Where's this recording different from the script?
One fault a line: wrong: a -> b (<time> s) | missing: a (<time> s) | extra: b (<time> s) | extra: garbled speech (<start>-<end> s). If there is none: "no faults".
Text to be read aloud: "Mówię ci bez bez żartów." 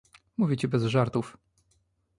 missing: bez (0.8 s)